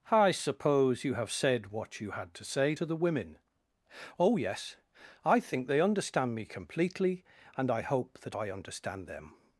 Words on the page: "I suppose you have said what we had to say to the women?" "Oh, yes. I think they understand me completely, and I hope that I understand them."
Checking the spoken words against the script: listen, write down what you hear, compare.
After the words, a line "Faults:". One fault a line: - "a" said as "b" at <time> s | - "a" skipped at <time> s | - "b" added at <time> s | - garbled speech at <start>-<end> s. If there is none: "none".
"I suppose you have said what you had to say to the women?" "Oh, yes. I think they understand me completely, and I hope that I understand them."
Faults:
- "we" said as "you" at 2.0 s